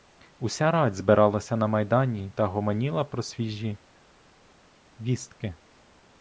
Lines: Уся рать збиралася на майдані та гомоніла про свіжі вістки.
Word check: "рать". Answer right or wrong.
right